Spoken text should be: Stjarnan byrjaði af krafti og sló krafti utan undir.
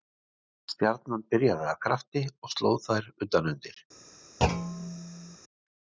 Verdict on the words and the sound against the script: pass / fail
fail